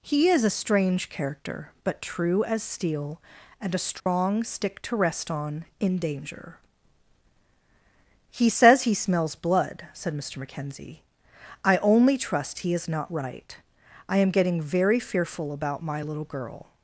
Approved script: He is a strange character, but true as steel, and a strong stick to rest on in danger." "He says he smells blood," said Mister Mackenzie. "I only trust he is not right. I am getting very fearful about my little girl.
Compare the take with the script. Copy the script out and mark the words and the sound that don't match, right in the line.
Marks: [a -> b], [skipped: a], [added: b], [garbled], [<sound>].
He is a strange character, but true as steel, and a strong [dropout] stick to rest on in danger." "He says he smells blood," said Mister Mackenzie. "I only trust he is not right. I am getting very fearful about my little girl.